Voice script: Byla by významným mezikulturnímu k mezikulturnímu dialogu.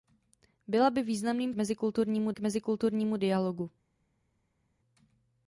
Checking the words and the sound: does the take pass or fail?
pass